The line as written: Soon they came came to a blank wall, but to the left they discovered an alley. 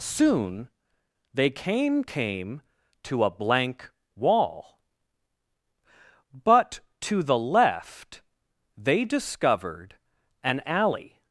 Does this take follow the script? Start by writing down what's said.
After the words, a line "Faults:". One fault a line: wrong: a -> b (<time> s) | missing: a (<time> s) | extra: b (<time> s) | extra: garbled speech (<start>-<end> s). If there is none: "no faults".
Soon they came came to a blank wall, but to the left they discovered an alley.
Faults:
no faults